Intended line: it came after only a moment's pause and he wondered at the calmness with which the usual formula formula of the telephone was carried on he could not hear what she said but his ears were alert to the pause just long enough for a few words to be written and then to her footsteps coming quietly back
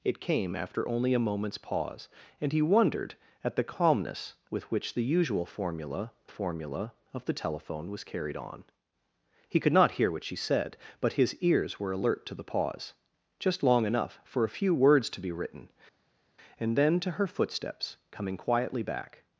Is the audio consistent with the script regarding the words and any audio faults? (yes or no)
yes